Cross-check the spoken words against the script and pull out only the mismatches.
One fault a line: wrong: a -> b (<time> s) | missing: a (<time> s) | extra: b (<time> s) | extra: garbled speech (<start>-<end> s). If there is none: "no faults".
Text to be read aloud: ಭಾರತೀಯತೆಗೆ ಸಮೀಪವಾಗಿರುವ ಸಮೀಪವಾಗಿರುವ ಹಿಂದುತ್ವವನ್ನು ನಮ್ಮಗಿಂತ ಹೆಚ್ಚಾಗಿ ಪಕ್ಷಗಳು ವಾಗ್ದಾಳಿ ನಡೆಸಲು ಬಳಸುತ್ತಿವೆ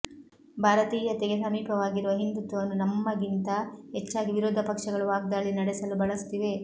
missing: ಸಮೀಪವಾಗಿರುವ (2.1 s)
extra: ವಿರೋಧ (4.3 s)